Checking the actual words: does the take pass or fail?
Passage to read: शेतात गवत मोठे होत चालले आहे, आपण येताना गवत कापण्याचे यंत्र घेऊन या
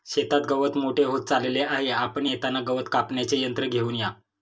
pass